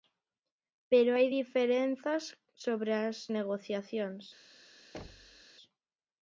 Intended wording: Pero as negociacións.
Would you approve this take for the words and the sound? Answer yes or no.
no